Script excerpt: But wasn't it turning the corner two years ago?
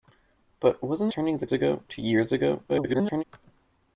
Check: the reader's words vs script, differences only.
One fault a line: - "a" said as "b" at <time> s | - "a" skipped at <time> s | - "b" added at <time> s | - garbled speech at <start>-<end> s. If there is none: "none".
- "it" skipped at 1.1 s
- "corner" said as "ago" at 1.5 s
- garbled speech at 2.7-3.2 s